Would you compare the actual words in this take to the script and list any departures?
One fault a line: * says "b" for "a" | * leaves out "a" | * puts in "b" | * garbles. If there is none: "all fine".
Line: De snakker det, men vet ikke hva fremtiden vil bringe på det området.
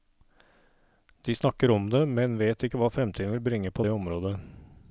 * puts in "om"